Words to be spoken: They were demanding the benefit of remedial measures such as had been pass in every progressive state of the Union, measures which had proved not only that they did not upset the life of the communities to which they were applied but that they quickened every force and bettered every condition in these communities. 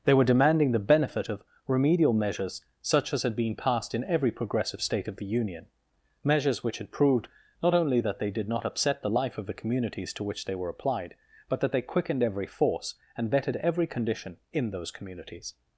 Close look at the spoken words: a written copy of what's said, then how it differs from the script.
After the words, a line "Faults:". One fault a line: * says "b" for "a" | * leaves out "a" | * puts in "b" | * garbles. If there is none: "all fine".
They were demanding the benefit of remedial measures such as had been passed in every progressive state of the Union, measures which had proved not only that they did not upset the life of the communities to which they were applied but that they quickened every force and bettered every condition in those communities.
Faults:
* says "passed" for "pass"
* says "those" for "these"